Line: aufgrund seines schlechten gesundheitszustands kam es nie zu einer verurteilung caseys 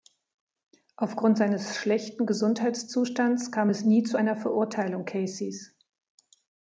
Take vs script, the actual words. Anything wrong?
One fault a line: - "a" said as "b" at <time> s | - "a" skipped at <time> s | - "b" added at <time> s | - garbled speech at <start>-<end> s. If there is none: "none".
none